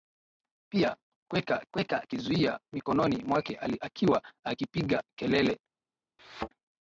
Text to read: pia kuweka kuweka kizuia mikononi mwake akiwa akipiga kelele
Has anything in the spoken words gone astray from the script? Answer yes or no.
no